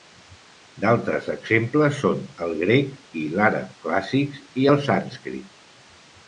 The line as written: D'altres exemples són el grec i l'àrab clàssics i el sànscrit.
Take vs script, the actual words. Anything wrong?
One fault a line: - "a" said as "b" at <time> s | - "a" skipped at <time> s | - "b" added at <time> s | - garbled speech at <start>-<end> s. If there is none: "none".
none